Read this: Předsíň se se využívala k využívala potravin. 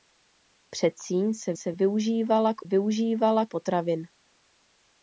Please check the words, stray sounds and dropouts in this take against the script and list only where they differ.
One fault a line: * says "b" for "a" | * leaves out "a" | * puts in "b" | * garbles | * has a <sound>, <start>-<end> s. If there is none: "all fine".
all fine